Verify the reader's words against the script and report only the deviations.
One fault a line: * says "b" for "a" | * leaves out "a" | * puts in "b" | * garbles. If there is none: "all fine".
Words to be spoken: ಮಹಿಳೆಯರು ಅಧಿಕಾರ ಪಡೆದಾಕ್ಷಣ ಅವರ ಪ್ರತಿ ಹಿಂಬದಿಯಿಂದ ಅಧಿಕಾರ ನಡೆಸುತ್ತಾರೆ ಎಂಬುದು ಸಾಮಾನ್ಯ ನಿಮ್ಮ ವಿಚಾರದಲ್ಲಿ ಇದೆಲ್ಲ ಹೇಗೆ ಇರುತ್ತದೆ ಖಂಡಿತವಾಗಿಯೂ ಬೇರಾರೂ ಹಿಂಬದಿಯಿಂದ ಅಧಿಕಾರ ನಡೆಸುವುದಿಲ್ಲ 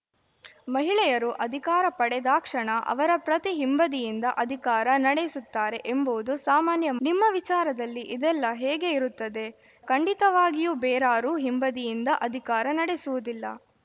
all fine